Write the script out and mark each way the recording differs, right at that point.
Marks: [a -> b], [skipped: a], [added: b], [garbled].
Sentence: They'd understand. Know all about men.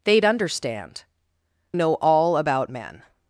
They'd understand. Know all about men.